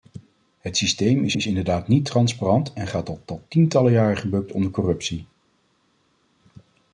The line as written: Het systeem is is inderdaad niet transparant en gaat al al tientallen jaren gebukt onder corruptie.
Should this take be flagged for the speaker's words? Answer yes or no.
no